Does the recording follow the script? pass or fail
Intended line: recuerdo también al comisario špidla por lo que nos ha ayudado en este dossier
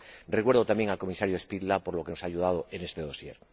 pass